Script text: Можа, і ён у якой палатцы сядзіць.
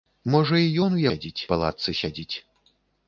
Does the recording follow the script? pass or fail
fail